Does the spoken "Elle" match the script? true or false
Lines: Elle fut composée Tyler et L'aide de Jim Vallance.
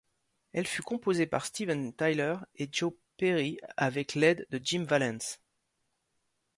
true